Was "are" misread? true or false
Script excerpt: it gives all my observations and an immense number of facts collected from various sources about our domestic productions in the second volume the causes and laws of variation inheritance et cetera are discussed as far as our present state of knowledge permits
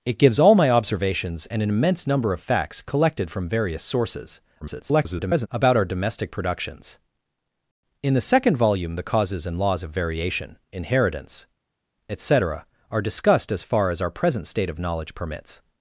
false